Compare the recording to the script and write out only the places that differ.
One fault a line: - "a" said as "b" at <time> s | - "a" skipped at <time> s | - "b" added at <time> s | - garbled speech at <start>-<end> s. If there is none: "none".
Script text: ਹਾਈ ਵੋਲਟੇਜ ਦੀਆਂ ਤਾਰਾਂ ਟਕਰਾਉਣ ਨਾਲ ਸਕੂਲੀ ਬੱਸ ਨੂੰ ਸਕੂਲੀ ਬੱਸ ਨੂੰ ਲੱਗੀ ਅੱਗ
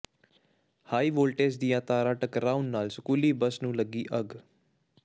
- "ਸਕੂਲੀ ਬੱਸ ਨੂੰ" skipped at 3.8 s